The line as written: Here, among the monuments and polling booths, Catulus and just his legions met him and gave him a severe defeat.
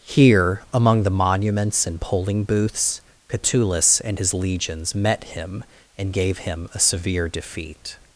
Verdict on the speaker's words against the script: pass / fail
fail